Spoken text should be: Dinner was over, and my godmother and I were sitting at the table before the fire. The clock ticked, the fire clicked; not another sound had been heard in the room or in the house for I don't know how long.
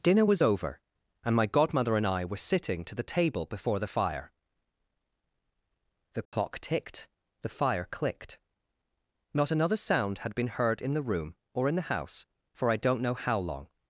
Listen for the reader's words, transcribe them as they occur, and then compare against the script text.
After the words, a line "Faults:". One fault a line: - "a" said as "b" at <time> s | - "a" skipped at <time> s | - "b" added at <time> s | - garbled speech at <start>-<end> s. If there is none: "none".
Dinner was over, and my godmother and I were sitting to the table before the fire. The clock ticked, the fire clicked; not another sound had been heard in the room or in the house for I don't know how long.
Faults:
- "at" said as "to" at 2.8 s